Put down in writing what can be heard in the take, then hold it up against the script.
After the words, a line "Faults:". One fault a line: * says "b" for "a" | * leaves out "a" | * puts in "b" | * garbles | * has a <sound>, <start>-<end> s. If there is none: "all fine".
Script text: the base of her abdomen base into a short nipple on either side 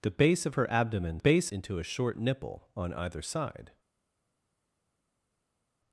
the base of her abdomen base into a short nipple on either side
Faults:
all fine